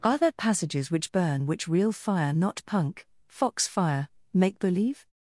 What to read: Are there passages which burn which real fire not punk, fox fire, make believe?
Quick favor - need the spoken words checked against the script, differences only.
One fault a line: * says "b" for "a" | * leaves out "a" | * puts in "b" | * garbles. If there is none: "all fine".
all fine